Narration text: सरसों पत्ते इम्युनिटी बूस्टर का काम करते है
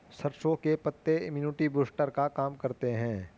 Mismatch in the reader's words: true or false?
true